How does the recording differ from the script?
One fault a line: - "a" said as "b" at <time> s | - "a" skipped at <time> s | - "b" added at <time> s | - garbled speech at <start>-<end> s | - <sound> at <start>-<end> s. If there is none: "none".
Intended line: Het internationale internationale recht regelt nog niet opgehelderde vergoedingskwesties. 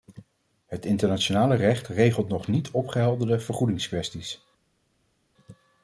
- "internationale" skipped at 1.6 s